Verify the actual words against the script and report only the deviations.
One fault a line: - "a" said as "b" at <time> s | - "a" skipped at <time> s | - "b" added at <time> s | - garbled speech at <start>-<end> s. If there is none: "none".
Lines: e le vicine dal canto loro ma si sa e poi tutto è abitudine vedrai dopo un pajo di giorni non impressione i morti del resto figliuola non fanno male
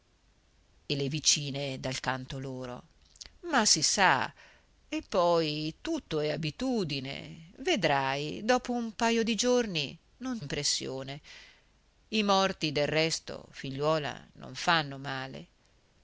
none